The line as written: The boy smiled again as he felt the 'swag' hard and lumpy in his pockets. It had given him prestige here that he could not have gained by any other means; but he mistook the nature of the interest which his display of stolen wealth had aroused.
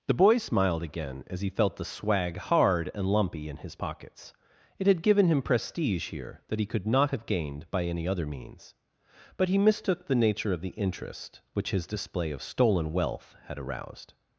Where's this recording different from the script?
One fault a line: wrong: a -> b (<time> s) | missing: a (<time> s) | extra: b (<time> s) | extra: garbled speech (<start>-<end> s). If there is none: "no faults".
no faults